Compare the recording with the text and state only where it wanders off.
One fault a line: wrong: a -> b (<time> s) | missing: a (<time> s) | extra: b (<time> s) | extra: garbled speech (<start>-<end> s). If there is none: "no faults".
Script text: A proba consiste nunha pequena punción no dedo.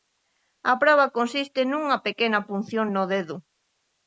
no faults